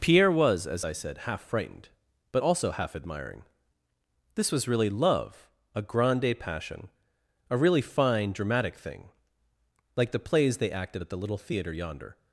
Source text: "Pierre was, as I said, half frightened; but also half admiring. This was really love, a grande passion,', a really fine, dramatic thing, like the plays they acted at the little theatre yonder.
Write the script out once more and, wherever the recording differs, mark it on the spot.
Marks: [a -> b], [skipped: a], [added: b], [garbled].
"Pierre was, as I said, half frightened; but also half admiring. This was really love, a grande passion,', a really fine, dramatic thing, like the plays they acted at the little theatre yonder.